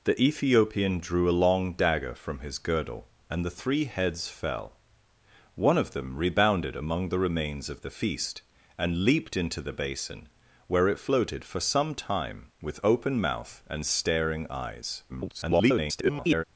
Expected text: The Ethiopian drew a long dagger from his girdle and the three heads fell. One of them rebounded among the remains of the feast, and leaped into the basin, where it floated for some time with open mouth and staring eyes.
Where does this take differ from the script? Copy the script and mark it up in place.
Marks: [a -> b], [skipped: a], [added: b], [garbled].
The Ethiopian drew a long dagger from his girdle and the three heads fell. One of them rebounded among the remains of the feast, and leaped into the basin, where it floated for some time with open mouth and staring eyes. [garbled]